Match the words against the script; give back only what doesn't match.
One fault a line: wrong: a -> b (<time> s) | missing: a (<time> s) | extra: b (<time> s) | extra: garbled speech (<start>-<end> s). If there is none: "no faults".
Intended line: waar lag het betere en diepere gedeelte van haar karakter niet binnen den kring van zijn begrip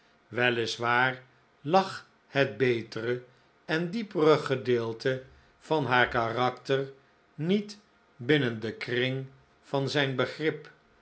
no faults